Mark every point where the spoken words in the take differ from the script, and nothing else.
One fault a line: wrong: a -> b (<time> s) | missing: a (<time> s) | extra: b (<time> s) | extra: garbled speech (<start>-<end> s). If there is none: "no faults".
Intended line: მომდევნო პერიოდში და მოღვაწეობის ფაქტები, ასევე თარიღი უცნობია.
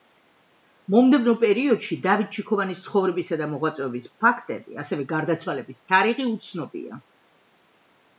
extra: დავით ჩიქოვანის ცხოვრებისა (2.0 s)
extra: გარდაცვალების (5.1 s)